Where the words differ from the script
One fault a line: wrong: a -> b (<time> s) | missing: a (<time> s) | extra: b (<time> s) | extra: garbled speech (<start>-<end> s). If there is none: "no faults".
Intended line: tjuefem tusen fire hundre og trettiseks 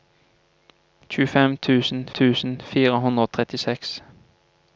extra: tusen (2.2 s)